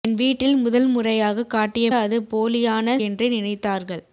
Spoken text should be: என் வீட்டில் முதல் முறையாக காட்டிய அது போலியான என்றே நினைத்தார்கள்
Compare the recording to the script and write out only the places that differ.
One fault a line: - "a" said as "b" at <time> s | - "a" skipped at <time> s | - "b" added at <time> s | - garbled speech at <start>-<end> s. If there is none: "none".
none